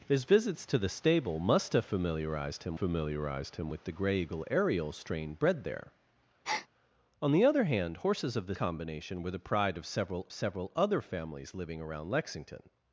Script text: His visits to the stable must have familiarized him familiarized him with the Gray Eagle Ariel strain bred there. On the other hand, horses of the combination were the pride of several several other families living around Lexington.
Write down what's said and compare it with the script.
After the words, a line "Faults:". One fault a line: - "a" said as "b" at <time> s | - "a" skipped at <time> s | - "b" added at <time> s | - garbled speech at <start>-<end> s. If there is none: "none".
His visits to the stable must have familiarized him familiarized him with the Gray Eagle Ariel strain bred there. On the other hand, horses of the combination were the pride of several several other families living around Lexington.
Faults:
none